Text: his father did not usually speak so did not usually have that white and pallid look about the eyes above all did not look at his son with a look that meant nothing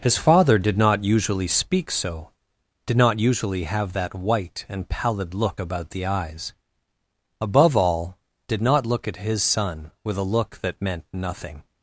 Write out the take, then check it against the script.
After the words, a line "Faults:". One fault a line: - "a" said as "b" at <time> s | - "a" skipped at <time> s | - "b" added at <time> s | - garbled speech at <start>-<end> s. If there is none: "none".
his father did not usually speak so did not usually have that white and pallid look about the eyes above all did not look at his son with a look that meant nothing
Faults:
none